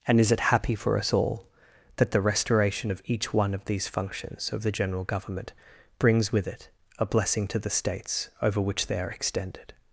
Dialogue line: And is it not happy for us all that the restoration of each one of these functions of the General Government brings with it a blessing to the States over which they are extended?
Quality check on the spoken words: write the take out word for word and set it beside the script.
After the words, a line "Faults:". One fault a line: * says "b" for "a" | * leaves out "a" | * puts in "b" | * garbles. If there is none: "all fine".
And is it happy for us all that the restoration of each one of these functions of the General Government brings with it a blessing to the States over which they are extended?
Faults:
* leaves out "not"